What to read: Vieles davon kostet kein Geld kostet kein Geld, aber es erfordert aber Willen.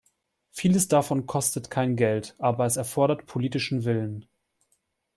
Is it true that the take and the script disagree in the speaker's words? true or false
true